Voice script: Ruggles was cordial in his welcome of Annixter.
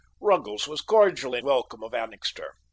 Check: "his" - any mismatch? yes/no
yes